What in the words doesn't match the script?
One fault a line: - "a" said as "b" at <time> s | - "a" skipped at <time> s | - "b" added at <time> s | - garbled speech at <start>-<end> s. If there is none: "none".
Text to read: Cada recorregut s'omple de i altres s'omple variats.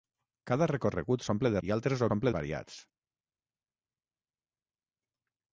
none